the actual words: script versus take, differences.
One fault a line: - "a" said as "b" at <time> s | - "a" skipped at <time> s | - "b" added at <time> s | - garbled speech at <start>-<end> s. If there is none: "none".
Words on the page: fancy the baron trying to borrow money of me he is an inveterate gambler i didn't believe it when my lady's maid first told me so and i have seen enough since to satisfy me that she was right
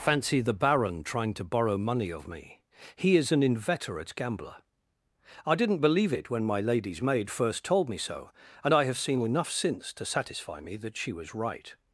none